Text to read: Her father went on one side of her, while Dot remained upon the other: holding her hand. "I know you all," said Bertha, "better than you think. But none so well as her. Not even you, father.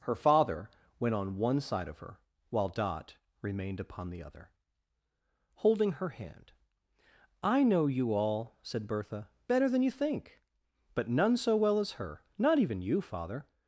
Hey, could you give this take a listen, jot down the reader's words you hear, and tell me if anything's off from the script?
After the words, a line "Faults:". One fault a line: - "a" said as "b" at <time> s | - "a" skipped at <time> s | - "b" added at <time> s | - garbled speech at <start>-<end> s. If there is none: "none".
Her father went on one side of her, while Dot remained upon the other: holding her hand. "I know you all," said Bertha, "better than you think. But none so well as her. Not even you, father.
Faults:
none